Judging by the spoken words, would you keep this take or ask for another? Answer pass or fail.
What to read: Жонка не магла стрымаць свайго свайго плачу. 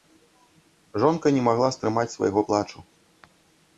fail